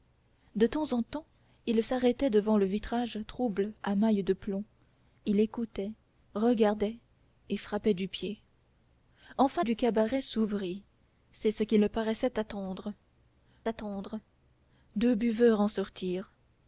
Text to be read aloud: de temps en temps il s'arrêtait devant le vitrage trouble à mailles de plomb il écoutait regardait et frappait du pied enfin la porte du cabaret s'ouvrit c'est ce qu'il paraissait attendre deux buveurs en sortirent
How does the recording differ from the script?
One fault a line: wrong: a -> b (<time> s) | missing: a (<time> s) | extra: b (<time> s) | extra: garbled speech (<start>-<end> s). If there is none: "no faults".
missing: la porte (9.6 s)
extra: attendre (13.7 s)